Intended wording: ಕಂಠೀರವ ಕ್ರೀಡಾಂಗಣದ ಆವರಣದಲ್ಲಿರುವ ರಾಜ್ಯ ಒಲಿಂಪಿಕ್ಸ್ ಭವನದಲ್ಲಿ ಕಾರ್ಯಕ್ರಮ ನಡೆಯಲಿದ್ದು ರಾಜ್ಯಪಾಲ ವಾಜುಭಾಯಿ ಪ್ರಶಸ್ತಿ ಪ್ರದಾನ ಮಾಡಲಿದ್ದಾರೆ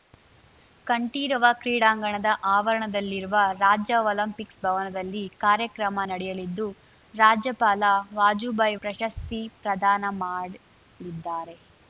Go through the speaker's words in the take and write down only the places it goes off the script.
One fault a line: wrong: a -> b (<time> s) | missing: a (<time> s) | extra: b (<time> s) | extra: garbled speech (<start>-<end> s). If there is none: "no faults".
no faults